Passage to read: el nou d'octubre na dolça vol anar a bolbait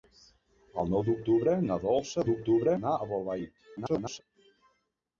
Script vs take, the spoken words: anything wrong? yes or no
yes